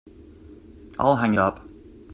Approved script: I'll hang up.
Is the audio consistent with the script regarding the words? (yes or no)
yes